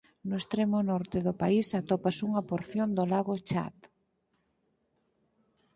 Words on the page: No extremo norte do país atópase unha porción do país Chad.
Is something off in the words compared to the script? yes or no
yes